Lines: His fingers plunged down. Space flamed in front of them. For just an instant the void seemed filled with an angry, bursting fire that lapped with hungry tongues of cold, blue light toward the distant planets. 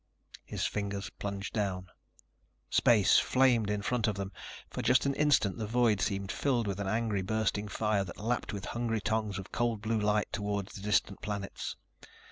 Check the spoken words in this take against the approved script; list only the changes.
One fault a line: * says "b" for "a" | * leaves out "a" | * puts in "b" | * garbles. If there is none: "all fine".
all fine